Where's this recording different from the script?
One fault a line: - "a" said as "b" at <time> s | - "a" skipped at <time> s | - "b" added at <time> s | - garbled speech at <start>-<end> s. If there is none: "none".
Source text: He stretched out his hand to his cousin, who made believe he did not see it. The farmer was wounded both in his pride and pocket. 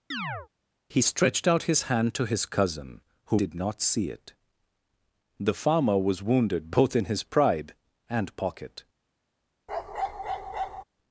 - "made believe he" skipped at 3.4 s